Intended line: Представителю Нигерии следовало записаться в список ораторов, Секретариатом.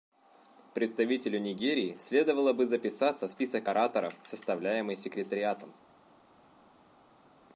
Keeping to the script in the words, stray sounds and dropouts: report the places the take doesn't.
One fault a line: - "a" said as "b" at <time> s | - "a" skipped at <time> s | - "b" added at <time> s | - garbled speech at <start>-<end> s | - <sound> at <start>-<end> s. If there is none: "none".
- "бы" added at 2.5 s
- "составляемый" added at 4.2 s